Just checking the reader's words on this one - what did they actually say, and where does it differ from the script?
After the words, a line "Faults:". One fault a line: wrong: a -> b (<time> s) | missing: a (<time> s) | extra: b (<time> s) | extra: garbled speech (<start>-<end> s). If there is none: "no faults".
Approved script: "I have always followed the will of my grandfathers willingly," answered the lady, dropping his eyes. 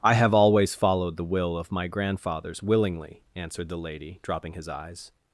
"I have always followed the will of my grandfathers willingly," answered the lady, dropping his eyes.
Faults:
no faults